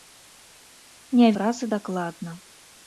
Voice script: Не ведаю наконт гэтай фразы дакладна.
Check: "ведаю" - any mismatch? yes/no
yes